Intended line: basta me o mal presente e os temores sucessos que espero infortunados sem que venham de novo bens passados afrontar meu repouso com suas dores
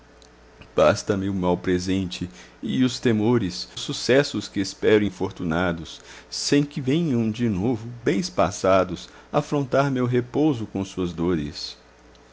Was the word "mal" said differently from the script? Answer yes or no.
no